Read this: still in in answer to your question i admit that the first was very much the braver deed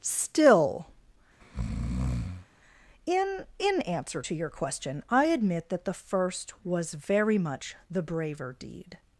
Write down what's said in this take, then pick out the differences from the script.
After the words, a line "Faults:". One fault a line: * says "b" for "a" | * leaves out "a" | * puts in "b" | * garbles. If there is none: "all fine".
still in in answer to your question i admit that the first was very much the braver deed
Faults:
all fine